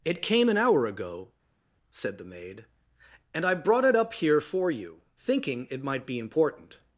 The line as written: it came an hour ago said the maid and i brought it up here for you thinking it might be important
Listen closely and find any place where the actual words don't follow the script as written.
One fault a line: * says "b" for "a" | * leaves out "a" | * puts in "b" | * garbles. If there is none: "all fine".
all fine